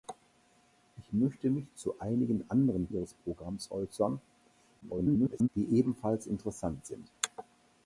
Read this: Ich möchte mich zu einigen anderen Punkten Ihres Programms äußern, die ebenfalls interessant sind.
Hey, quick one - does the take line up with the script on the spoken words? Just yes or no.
no